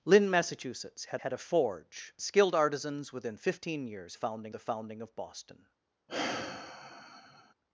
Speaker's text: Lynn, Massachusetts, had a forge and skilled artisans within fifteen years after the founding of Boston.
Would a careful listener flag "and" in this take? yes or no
yes